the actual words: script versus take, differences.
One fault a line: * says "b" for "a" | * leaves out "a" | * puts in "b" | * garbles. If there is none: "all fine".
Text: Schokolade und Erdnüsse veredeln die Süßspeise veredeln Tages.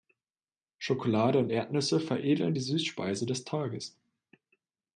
* says "des" for "veredeln"